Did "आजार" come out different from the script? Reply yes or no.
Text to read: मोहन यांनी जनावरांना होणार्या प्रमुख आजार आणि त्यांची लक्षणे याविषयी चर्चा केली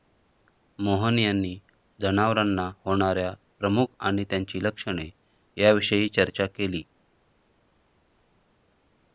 yes